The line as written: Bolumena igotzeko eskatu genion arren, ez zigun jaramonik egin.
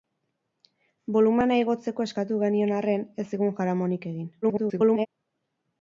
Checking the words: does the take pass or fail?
fail